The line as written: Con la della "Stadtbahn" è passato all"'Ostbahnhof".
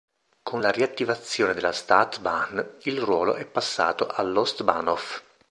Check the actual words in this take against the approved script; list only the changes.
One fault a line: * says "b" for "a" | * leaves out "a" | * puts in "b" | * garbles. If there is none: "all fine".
* puts in "riattivazione"
* puts in "il ruolo"